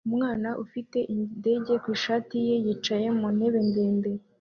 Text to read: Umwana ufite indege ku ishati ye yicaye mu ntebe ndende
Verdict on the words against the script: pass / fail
pass